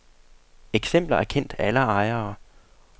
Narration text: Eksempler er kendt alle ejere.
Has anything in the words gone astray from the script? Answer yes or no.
no